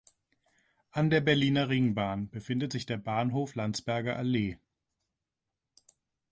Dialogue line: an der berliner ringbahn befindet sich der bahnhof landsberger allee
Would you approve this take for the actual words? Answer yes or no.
yes